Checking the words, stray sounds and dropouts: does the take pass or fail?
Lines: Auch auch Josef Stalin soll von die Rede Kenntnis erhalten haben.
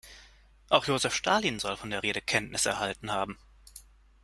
fail